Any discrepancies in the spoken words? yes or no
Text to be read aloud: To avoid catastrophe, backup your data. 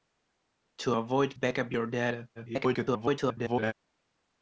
yes